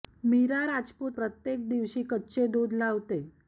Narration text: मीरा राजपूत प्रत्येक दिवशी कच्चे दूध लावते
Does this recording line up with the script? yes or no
yes